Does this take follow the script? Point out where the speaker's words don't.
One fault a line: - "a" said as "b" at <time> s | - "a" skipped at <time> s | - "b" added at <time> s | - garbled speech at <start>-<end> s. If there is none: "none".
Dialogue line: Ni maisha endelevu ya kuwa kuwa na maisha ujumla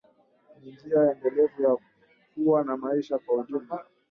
- "maisha" said as "njia" at 0.7 s
- "kuwa" skipped at 2.6 s
- "kwa" added at 3.2 s